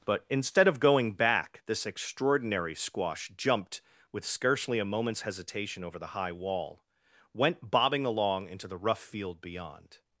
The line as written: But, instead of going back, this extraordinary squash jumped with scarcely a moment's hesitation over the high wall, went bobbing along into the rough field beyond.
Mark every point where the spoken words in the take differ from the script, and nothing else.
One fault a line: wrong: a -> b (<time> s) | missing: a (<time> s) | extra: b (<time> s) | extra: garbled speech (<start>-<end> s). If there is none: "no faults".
no faults